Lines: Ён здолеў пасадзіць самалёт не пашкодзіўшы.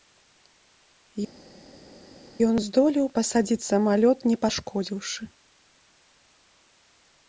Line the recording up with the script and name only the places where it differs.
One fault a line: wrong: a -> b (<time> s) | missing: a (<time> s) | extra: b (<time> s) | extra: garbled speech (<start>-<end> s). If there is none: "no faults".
no faults